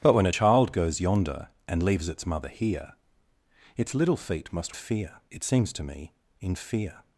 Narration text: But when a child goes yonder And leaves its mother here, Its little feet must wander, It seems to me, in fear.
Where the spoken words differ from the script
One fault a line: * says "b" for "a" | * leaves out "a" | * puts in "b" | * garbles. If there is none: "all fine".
* says "fear" for "wander"